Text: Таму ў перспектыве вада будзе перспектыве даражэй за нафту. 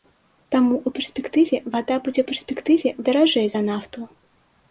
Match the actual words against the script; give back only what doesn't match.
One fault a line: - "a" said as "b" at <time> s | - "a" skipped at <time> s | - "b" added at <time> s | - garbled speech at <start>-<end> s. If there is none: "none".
none